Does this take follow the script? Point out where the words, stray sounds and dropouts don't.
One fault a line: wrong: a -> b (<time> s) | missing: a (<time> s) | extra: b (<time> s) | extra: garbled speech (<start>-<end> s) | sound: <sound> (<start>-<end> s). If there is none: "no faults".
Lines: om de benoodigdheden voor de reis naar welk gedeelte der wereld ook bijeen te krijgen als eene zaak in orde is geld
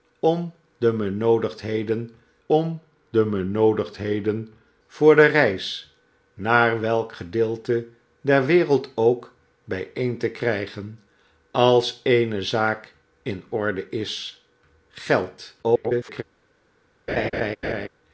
extra: om de benoodigdheden (2.5 s)
extra: garbled speech (15.6-16.2 s)
sound: laugh (17.1-17.9 s)